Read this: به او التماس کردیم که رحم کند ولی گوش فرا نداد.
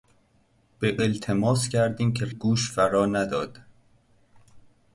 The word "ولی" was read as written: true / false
false